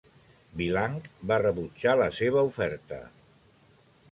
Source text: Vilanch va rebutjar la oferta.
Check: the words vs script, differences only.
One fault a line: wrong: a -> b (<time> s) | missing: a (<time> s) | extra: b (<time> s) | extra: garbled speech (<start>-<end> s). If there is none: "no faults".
extra: seva (2.2 s)